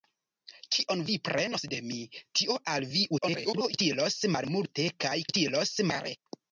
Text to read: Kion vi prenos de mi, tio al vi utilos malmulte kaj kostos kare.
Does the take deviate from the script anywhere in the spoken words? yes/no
yes